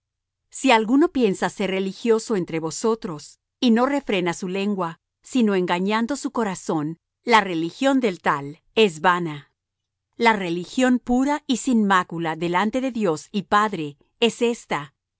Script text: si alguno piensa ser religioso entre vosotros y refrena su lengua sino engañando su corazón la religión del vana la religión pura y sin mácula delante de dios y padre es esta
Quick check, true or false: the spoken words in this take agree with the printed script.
false